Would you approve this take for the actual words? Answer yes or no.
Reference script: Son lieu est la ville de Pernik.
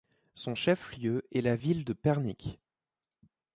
no